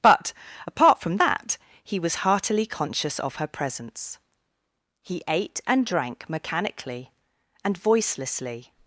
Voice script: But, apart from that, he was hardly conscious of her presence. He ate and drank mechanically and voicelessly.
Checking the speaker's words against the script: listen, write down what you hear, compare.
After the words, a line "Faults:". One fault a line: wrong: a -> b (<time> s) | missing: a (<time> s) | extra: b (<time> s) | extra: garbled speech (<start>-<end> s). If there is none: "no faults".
But, apart from that, he was heartily conscious of her presence. He ate and drank mechanically and voicelessly.
Faults:
wrong: hardly -> heartily (2.1 s)